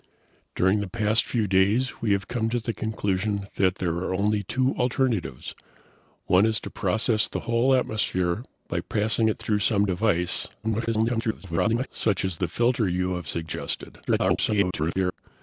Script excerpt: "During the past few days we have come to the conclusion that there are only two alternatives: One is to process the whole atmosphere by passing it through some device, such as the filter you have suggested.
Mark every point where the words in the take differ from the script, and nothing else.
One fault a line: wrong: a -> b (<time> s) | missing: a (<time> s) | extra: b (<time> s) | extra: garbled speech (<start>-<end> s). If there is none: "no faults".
extra: garbled speech (10.6-11.9 s)
extra: garbled speech (14.1-15.2 s)